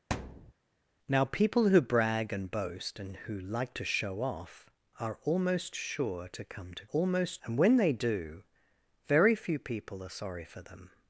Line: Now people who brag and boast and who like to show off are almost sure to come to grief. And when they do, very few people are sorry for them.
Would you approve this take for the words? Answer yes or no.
no